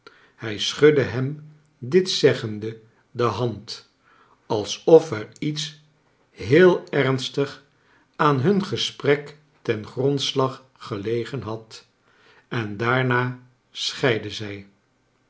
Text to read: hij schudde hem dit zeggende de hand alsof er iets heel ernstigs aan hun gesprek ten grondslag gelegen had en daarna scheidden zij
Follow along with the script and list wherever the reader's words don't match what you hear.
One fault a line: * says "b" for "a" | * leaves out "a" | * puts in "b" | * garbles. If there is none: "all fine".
all fine